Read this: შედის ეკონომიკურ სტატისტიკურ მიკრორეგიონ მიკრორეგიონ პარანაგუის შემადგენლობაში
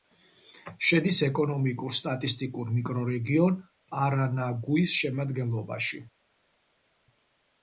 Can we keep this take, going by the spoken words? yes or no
no